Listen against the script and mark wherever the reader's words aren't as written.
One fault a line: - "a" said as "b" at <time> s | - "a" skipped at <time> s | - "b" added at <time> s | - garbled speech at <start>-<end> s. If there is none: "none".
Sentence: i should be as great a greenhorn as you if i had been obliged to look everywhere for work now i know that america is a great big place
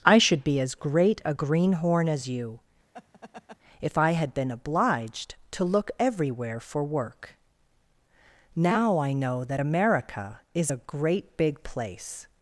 none